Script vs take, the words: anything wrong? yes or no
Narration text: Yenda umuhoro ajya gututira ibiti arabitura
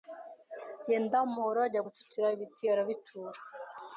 no